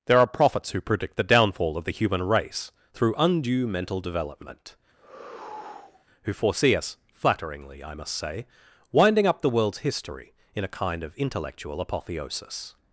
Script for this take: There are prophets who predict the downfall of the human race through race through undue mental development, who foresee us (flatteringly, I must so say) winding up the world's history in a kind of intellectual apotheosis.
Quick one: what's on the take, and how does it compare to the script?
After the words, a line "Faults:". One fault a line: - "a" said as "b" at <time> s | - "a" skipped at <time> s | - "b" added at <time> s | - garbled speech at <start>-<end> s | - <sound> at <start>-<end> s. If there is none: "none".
There are prophets who predict the downfall of the human race through undue mental development, who foresee us (flatteringly, I must say) winding up the world's history in a kind of intellectual apotheosis.
Faults:
- "race through" skipped at 3.1 s
- sigh at 4.9-6.1 s
- "so" skipped at 8.2 s